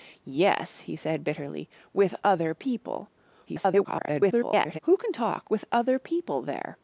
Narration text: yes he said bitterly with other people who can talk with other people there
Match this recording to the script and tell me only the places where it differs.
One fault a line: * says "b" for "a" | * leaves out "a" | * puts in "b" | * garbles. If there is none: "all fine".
* garbles